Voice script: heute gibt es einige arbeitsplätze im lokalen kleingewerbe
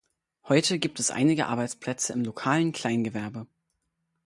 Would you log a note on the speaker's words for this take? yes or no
no